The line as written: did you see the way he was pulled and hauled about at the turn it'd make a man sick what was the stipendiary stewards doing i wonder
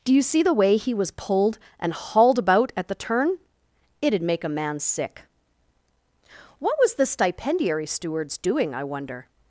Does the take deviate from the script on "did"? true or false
true